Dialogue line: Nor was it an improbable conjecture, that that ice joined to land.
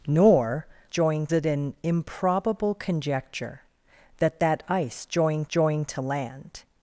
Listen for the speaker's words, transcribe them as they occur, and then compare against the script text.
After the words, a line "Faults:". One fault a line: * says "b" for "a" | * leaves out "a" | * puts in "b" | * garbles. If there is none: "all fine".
Nor joined it an improbable conjecture, that that ice joined joined to land.
Faults:
* says "joined" for "was"
* puts in "joined"